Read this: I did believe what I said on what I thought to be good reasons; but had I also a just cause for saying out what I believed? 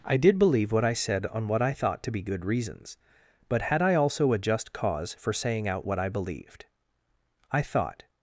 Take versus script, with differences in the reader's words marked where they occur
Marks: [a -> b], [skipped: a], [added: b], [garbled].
I did believe what I said on what I thought to be good reasons; but had I also a just cause for saying out what I believed? [added: I thought]